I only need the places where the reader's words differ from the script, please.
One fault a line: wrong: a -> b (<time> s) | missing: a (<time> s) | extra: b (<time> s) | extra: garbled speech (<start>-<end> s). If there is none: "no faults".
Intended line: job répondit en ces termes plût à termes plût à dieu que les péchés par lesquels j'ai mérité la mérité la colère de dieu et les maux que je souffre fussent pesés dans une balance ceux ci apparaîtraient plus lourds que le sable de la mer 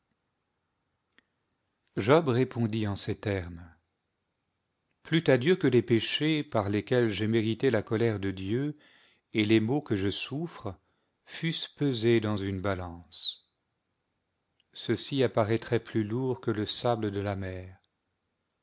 missing: termes plût à (5.4 s)
missing: mérité la (7.8 s)